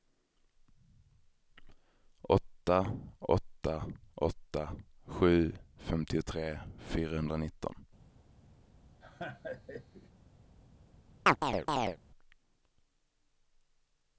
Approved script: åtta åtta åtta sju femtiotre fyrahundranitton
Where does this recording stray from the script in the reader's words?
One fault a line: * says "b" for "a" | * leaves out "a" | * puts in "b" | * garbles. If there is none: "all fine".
all fine